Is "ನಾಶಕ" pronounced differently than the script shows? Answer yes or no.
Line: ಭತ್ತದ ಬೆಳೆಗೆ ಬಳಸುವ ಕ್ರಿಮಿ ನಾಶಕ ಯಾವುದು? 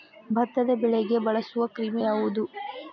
yes